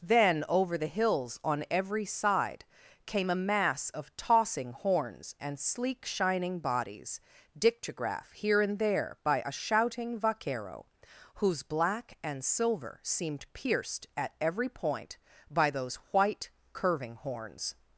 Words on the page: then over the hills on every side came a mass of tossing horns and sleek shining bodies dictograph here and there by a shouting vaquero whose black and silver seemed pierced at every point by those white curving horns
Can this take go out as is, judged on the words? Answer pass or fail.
pass